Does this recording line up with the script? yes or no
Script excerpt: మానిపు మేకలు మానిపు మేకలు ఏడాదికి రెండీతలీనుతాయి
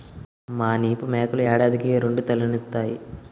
no